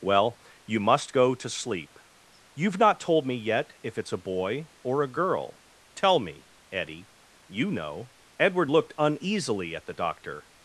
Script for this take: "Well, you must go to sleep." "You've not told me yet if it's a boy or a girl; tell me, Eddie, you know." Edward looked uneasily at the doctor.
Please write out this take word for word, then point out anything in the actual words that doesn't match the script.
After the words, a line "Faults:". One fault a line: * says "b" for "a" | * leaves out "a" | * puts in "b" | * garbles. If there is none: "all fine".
"Well, you must go to sleep." "You've not told me yet if it's a boy or a girl; tell me, Eddie, you know." Edward looked uneasily at the doctor.
Faults:
all fine